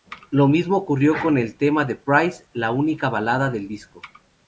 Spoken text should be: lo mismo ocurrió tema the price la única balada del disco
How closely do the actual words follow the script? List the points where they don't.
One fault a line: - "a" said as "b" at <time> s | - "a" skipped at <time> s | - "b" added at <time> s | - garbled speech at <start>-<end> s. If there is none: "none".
- "con el" added at 1.2 s